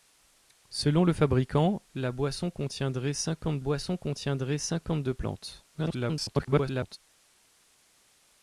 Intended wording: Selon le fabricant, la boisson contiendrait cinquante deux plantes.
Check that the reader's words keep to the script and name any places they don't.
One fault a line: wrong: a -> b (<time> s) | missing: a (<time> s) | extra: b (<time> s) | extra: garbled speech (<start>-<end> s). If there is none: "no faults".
extra: boisson contiendrait cinquante (3.6 s)
extra: garbled speech (5.7-7.0 s)